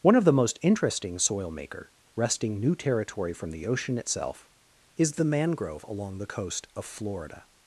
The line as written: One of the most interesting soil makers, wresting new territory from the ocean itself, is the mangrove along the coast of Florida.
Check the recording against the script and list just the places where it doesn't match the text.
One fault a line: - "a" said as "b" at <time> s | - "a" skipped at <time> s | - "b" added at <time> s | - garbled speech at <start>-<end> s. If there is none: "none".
- "makers" said as "maker" at 1.5 s